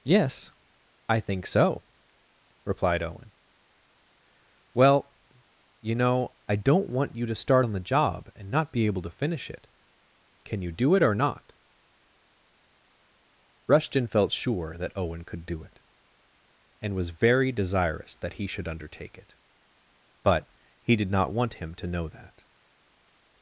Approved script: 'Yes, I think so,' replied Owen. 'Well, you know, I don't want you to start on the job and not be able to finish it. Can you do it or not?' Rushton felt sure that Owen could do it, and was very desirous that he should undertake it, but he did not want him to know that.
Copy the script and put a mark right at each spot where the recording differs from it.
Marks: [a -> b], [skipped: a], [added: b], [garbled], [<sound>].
'Yes, I think so,' replied Owen. 'Well, you know, I don't want you to start on the job and not be able to finish it. Can you do it or not?' Rushton felt sure that Owen could do it, and was very desirous that he should undertake it, but he did not want him to know that.